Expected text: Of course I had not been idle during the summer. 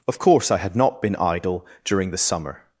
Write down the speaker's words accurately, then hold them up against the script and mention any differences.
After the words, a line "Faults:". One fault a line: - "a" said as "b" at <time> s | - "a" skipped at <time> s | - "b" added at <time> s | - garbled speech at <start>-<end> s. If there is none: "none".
Of course I had not been idle during the summer.
Faults:
none